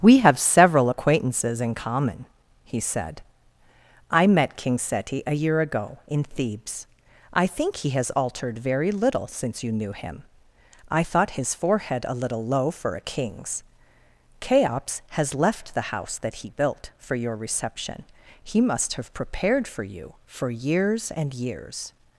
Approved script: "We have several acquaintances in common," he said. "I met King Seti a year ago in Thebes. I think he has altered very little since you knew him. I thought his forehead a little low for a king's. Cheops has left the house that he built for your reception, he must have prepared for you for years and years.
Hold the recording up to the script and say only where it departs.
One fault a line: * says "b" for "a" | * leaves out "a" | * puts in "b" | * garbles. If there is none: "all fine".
all fine